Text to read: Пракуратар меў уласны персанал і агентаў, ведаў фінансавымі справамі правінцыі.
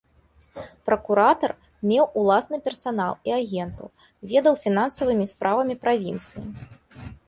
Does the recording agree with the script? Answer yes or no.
yes